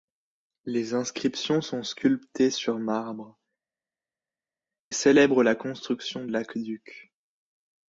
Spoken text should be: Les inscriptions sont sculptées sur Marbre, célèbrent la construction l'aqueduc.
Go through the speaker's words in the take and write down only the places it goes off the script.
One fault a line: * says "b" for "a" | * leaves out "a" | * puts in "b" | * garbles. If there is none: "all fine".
all fine